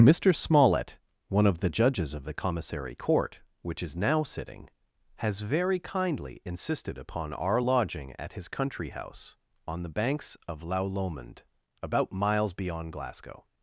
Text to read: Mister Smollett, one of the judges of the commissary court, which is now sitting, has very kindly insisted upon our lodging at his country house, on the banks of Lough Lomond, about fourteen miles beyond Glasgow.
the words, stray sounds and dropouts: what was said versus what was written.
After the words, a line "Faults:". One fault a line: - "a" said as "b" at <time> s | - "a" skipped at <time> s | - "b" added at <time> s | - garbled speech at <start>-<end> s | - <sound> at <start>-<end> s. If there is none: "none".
Mister Smollett, one of the judges of the commissary court, which is now sitting, has very kindly insisted upon our lodging at his country house, on the banks of Lough Lomond, about miles beyond Glasgow.
Faults:
- "fourteen" skipped at 12.1 s